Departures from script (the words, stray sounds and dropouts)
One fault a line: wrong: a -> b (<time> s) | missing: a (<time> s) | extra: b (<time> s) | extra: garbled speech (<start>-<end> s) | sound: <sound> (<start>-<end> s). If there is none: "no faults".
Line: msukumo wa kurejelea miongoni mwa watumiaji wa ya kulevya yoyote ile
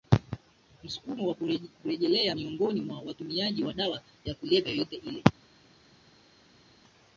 extra: dawa (3.7 s)